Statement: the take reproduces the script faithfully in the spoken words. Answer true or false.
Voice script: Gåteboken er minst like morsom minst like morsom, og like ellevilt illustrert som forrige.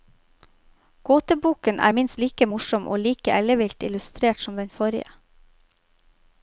false